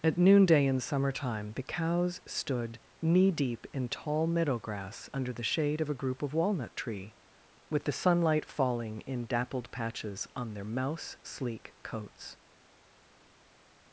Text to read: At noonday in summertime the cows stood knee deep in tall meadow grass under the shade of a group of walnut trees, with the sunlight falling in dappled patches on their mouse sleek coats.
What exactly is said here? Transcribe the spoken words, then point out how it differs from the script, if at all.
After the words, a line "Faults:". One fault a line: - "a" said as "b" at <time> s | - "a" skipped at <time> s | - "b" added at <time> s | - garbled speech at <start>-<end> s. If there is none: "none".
At noonday in summertime the cows stood knee deep in tall meadow grass under the shade of a group of walnut tree, with the sunlight falling in dappled patches on their mouse sleek coats.
Faults:
- "trees" said as "tree" at 6.8 s